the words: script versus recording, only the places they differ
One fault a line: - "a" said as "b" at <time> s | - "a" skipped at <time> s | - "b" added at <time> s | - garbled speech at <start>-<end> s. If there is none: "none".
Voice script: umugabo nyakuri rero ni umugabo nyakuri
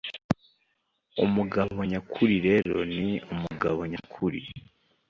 none